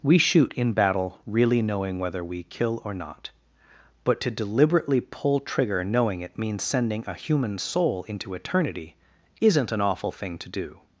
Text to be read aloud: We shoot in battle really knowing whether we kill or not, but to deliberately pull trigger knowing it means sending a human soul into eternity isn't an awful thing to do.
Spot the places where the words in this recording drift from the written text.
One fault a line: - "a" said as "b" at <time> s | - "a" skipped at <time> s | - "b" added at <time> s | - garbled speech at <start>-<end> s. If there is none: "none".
none